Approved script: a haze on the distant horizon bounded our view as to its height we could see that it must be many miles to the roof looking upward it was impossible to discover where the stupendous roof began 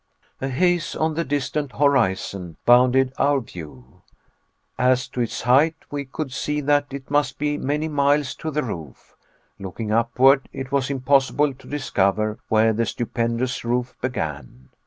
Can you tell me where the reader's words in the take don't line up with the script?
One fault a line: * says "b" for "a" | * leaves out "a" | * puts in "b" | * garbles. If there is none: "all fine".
all fine